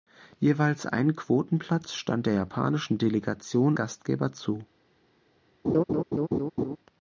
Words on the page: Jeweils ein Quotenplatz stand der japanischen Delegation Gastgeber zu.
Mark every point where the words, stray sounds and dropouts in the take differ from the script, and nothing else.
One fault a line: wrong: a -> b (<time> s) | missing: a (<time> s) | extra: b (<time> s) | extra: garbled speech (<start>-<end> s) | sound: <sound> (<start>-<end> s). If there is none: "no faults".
sound: laugh (5.6-6.8 s)